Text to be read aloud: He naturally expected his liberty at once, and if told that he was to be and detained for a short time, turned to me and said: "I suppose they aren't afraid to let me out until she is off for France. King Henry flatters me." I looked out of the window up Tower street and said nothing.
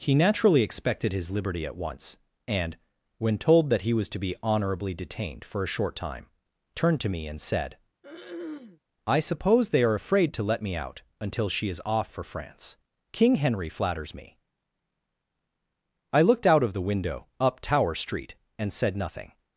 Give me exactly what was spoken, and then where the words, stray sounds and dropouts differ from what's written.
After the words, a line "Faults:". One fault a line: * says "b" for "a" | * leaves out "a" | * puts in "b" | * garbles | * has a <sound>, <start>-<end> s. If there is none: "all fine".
He naturally expected his liberty at once, and when told that he was to be honorably detained for a short time, turned to me and said: "I suppose they are afraid to let me out until she is off for France. King Henry flatters me." I looked out of the window up Tower street and said nothing.
Faults:
* says "when" for "if"
* says "honorably" for "and"
* has a throat clearing, 8.0-8.8 s
* says "are" for "aren't"